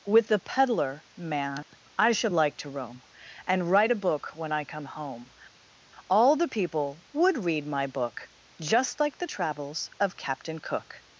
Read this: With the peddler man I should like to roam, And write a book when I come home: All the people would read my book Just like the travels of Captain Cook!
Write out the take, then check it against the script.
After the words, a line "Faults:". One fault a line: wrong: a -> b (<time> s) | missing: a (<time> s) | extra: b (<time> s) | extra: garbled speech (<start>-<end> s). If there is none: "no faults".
With the peddler man I should like to roam, And write a book when I come home: All the people would read my book Just like the travels of Captain Cook!
Faults:
no faults